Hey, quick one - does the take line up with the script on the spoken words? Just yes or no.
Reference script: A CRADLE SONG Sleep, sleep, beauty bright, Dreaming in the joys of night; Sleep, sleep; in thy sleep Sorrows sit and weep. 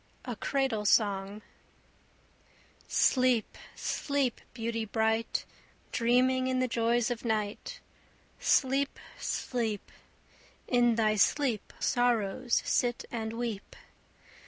yes